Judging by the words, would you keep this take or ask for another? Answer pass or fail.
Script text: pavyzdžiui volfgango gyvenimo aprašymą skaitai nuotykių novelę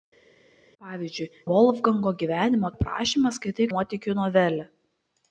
pass